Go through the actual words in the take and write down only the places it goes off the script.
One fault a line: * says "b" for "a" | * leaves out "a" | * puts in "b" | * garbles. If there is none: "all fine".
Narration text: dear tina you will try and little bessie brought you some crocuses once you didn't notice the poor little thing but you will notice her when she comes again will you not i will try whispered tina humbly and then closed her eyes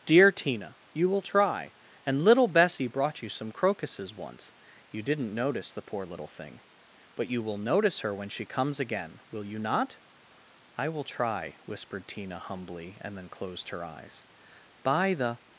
* puts in "by the"